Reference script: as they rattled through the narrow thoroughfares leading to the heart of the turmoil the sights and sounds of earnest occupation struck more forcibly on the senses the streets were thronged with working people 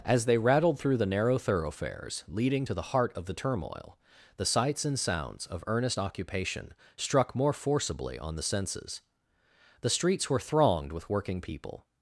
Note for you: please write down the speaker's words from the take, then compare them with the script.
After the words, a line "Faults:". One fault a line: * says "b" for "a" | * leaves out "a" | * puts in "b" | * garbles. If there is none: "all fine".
as they rattled through the narrow thoroughfares leading to the heart of the turmoil the sights and sounds of earnest occupation struck more forcibly on the senses the streets were thronged with working people
Faults:
all fine